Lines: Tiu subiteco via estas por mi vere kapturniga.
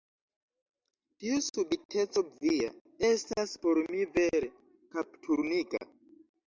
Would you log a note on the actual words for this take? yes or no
no